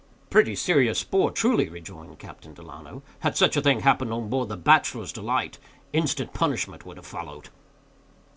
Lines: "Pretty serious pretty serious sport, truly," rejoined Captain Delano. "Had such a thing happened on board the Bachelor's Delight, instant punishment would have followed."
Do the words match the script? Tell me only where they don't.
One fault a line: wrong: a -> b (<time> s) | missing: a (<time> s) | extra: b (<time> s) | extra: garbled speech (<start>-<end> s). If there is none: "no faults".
missing: pretty serious (1.0 s)